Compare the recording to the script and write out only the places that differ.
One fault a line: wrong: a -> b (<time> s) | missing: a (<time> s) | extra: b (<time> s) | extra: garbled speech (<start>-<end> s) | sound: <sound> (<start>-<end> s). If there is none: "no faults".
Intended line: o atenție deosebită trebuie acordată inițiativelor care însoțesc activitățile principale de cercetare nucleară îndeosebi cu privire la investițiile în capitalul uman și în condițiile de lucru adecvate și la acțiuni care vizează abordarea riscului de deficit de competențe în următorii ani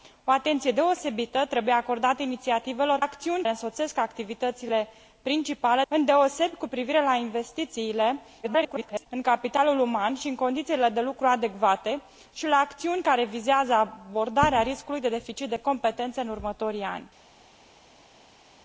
wrong: care -> acțiuni (3.0 s)
missing: de cercetare nucleară (5.8 s)
extra: garbled speech (8.4-9.1 s)